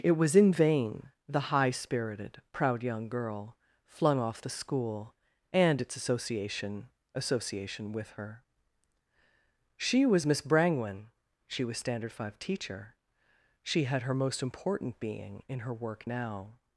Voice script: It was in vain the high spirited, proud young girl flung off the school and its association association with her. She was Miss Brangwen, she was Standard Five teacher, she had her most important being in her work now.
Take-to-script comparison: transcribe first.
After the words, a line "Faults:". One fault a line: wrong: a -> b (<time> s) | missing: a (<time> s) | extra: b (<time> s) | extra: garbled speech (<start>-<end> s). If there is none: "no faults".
It was in vain the high spirited, proud young girl flung off the school and its association association with her. She was Miss Brangwen, she was Standard Five teacher, she had her most important being in her work now.
Faults:
no faults